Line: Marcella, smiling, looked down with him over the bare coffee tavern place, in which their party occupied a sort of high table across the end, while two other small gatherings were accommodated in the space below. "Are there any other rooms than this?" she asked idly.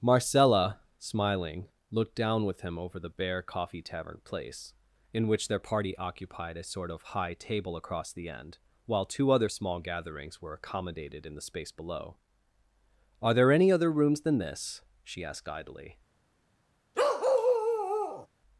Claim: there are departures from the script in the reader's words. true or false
false